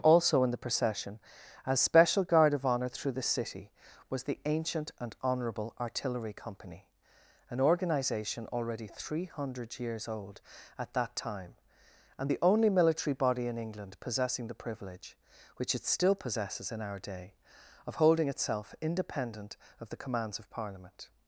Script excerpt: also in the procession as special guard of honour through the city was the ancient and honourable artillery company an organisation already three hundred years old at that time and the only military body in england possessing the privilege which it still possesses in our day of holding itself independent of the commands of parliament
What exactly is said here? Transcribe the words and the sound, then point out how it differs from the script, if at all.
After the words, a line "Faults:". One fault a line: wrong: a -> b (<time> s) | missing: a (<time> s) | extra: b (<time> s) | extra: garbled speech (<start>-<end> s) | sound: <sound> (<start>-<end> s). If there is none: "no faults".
also in the procession as special guard of honour through the city was the ancient and honourable artillery company an organisation already three hundred years old at that time and the only military body in england possessing the privilege which it still possesses in our day of holding itself independent of the commands of parliament
Faults:
no faults